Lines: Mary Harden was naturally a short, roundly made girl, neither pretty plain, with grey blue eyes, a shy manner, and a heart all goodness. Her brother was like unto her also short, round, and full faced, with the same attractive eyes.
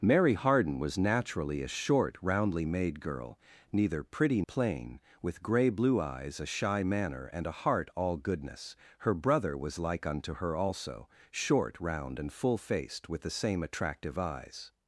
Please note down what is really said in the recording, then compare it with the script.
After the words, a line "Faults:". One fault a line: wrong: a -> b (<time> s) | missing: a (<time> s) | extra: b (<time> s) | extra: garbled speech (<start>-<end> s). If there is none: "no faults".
Mary Harden was naturally a short, roundly made girl, neither pretty plain, with grey blue eyes, a shy manner, and a heart all goodness. Her brother was like unto her also short, round, and full faced, with the same attractive eyes.
Faults:
no faults